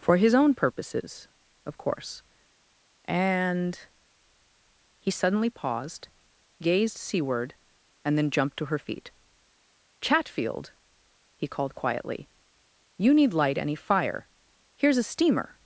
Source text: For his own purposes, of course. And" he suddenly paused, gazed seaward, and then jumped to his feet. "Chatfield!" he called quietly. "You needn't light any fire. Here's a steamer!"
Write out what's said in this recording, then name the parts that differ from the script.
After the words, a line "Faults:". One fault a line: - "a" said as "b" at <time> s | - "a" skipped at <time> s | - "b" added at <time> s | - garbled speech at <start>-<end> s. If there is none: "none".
For his own purposes, of course. And" he suddenly paused, gazed seaward, and then jumped to her feet. "Chatfield!" he called quietly. "You need light any fire. Here's a steamer!"
Faults:
- "his" said as "her" at 8.7 s
- "needn't" said as "need" at 13.1 s